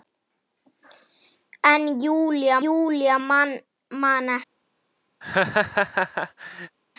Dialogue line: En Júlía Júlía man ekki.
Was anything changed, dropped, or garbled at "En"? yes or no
no